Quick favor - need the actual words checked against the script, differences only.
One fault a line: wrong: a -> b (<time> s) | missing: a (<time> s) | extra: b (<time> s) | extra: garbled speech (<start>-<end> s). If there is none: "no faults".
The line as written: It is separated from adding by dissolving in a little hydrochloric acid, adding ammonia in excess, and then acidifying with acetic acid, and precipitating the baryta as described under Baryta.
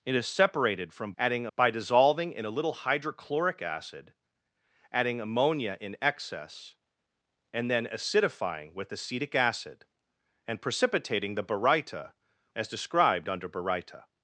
no faults